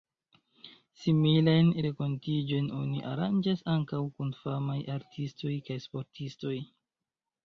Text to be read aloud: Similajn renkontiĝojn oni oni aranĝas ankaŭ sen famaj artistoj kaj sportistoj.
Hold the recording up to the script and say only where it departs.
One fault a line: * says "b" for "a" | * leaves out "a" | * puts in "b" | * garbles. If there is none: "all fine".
* leaves out "oni"
* says "kun" for "sen"